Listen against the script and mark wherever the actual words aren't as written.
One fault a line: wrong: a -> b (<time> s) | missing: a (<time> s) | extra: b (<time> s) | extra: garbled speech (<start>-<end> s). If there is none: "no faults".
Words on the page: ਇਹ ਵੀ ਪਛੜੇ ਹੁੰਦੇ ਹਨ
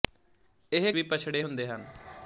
no faults